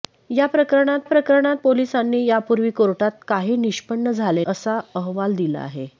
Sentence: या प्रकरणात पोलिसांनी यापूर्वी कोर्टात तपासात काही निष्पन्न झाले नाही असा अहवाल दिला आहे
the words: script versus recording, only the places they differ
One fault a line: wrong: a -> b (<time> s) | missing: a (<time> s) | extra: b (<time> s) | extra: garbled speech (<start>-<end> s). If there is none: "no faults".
extra: प्रकरणात (1.0 s)
missing: तपासात (3.1 s)
missing: नाही (4.4 s)